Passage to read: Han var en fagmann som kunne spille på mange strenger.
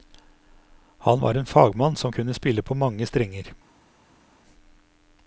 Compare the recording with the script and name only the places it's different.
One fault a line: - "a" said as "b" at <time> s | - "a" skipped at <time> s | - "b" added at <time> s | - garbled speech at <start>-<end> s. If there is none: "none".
none